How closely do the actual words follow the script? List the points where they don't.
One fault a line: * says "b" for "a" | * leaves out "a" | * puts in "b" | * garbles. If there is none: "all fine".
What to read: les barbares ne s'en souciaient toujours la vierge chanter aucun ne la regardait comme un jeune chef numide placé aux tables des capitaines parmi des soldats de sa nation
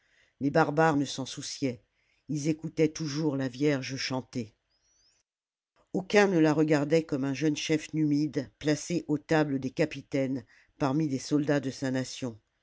* puts in "ils écoutaient"